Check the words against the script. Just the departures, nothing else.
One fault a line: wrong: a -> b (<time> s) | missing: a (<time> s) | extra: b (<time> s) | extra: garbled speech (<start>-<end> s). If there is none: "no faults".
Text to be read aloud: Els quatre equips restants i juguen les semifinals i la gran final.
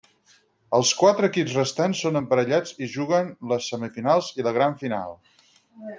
extra: són emparellats (2.0 s)